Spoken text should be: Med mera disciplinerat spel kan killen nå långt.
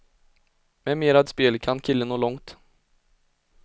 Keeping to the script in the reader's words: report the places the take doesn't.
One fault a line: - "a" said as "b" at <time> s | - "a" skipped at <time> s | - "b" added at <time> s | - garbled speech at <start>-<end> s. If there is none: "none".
- "disciplinerat" skipped at 1.2 s